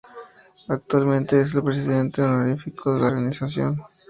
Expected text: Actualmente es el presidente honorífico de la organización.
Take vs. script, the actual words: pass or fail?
pass